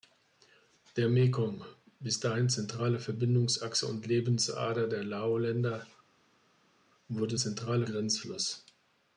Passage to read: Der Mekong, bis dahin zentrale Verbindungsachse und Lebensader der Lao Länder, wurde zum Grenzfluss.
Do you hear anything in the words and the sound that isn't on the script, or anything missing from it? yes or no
yes